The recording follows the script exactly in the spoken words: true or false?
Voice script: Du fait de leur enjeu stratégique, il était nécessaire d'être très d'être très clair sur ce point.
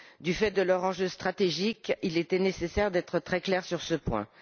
false